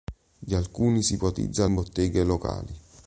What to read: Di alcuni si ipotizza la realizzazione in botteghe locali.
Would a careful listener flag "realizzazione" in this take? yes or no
yes